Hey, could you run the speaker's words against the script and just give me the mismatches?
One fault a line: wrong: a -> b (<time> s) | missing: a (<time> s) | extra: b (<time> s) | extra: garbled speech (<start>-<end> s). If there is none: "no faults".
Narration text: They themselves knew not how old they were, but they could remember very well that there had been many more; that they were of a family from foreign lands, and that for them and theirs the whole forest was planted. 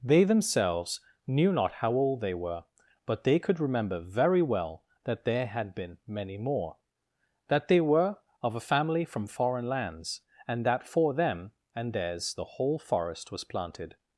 no faults